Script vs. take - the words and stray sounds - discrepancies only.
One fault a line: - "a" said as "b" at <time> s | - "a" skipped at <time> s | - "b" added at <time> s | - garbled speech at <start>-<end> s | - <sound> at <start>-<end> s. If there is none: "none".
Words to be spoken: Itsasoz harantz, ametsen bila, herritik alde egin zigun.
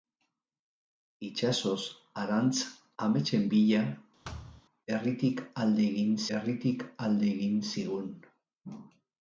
- thud at 4.2-4.6 s
- "herritik alde egin" added at 6.4 s